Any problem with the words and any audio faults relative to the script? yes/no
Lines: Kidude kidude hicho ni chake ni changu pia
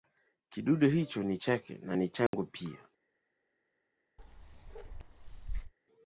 yes